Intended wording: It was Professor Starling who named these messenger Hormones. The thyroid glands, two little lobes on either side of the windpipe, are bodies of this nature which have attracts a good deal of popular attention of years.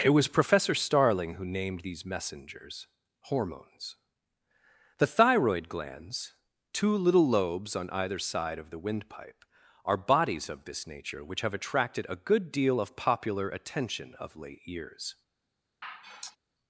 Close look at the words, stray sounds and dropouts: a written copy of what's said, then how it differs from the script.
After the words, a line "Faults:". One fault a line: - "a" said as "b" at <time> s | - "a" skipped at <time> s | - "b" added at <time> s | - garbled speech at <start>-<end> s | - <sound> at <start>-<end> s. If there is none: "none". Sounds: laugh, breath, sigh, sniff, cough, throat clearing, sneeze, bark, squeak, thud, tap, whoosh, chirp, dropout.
It was Professor Starling who named these messengers Hormones. The thyroid glands, two little lobes on either side of the windpipe, are bodies of this nature which have attracted a good deal of popular attention of late years.
Faults:
- "messenger" said as "messengers" at 2.1 s
- "attracts" said as "attracted" at 11.5 s
- "late" added at 14.4 s
- sigh at 15.8-16.4 s